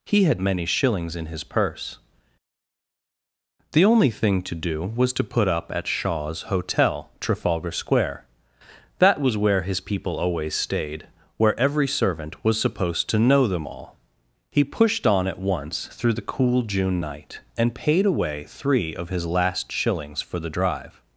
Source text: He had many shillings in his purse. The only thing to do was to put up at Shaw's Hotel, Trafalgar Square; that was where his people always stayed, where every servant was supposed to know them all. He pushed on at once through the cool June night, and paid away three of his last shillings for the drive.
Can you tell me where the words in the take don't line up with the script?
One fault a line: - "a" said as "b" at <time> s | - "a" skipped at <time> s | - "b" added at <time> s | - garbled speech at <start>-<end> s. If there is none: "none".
none